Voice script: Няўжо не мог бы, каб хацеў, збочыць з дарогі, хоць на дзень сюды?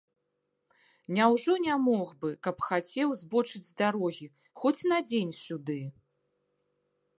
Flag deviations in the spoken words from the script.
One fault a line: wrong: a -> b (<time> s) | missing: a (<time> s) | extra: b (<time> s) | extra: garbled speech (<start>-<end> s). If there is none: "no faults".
no faults